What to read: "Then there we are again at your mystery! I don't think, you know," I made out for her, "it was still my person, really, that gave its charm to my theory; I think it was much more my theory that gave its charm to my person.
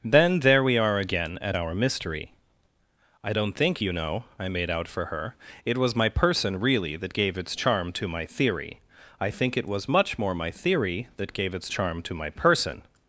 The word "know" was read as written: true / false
true